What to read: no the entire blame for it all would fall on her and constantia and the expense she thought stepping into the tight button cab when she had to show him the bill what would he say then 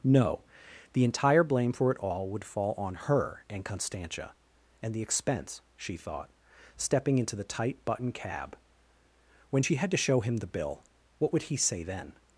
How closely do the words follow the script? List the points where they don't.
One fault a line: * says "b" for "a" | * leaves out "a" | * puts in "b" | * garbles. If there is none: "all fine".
all fine